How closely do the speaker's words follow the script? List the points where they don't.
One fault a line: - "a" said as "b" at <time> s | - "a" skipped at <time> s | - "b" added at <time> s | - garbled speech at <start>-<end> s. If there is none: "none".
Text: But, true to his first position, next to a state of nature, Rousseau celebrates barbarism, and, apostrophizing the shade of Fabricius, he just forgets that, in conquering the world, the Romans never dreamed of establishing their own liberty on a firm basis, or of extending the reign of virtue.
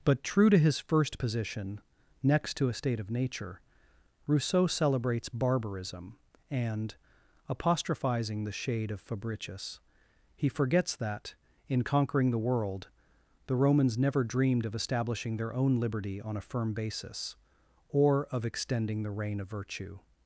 - "just" skipped at 10.5 s